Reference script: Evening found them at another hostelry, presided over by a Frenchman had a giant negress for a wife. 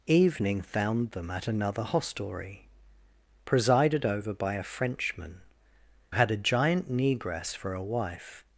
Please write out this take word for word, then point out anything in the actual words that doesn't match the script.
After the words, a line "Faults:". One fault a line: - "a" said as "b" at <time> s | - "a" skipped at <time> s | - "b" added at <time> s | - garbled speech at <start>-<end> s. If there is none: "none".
Evening found them at another hostelry, presided over by a Frenchman had a giant negress for a wife.
Faults:
none